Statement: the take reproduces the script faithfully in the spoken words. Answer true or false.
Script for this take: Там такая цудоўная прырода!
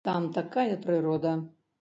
false